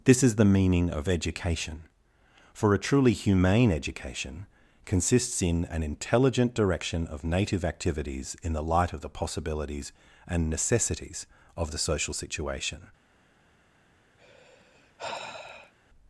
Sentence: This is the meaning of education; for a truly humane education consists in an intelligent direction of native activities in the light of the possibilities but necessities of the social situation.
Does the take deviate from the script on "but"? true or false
true